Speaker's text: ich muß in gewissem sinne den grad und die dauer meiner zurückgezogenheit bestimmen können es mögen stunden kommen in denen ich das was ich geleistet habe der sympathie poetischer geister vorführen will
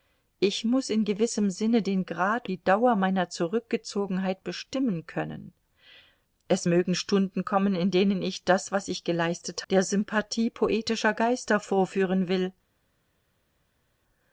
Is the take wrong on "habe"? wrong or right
wrong